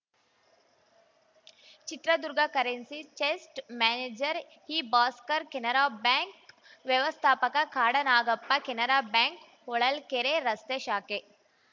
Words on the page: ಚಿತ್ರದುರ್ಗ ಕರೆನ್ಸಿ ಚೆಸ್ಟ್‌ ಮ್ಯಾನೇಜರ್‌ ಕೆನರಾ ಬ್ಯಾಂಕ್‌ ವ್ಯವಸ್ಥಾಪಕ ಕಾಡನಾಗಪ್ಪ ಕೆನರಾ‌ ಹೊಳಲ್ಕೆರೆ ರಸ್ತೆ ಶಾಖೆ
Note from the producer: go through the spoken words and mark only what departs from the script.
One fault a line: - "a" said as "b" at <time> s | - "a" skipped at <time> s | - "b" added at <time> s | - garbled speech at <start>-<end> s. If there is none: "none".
- "ಇಭಾಸ್ಕರ್" added at 4.8 s
- "ಬ್ಯಾಂಕ್" added at 9.1 s